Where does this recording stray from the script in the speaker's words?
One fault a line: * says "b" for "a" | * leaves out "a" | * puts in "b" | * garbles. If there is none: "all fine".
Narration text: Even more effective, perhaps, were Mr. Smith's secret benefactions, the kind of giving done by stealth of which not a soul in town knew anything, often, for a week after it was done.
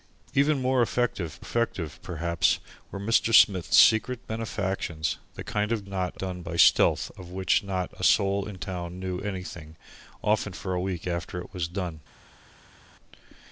* puts in "effective"
* says "not" for "giving"